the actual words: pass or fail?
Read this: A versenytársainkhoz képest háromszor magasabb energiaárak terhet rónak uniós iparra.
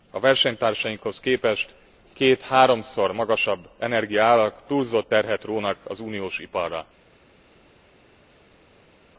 fail